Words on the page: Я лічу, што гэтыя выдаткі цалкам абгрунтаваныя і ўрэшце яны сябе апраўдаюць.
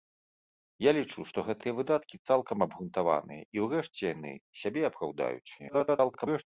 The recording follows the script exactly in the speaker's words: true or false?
false